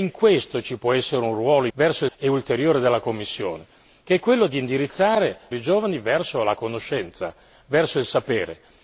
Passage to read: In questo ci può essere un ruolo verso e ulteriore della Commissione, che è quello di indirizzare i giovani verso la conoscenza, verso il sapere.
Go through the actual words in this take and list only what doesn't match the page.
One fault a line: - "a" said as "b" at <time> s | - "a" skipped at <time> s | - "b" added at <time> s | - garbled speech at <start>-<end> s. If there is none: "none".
none